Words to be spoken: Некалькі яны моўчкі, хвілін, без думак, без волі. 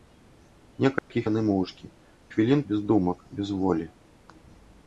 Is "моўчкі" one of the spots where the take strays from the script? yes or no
no